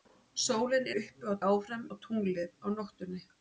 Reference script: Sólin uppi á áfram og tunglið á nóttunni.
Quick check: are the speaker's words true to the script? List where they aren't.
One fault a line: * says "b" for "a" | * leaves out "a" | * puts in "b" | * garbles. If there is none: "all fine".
all fine